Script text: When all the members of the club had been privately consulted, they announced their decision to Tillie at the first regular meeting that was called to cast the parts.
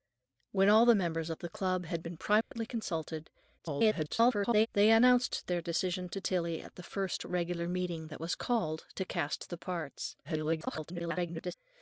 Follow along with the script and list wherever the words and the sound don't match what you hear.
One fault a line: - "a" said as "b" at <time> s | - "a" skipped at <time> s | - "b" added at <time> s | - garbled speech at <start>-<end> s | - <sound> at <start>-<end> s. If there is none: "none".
- dropout at 2.4-2.5 s
- garbled speech at 3.6-4.7 s
- garbled speech at 10.2-11.5 s